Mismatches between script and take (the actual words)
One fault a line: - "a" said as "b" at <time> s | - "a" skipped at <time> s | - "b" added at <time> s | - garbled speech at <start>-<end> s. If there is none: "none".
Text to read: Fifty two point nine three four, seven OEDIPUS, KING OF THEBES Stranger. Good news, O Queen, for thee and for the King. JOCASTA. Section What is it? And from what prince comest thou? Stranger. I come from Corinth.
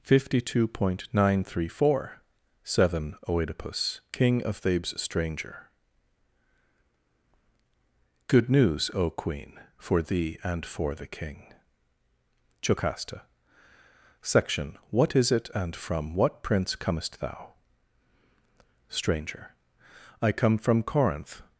none